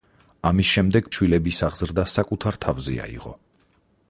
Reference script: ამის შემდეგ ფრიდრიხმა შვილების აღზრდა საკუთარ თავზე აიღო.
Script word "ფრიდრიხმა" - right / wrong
wrong